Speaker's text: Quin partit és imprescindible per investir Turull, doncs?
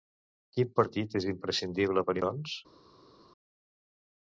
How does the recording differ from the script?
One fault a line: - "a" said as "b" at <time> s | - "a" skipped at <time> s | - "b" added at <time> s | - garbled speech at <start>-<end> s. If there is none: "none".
- "investir Turull" skipped at 2.1 s